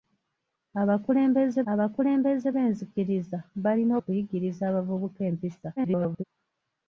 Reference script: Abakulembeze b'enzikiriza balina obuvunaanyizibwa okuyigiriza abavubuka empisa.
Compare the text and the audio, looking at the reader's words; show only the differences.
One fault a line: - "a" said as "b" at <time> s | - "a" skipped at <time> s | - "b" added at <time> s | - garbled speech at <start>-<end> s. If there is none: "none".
- "abakulembeze" added at 1.7 s
- "obuvunaanyizibwa" skipped at 3.9 s
- garbled speech at 5.8-6.2 s